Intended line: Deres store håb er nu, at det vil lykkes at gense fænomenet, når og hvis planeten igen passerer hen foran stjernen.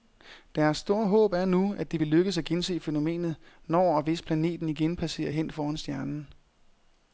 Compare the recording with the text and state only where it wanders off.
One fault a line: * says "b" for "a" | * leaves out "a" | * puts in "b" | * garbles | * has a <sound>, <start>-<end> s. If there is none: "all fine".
all fine